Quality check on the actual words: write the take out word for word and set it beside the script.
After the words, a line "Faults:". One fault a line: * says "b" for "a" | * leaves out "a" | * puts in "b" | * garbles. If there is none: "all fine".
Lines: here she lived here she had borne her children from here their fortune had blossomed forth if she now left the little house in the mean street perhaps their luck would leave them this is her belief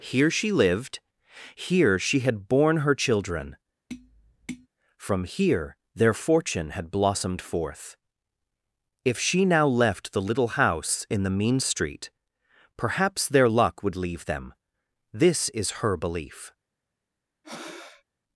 here she lived here she had borne her children from here their fortune had blossomed forth if she now left the little house in the mean street perhaps their luck would leave them this is her belief
Faults:
all fine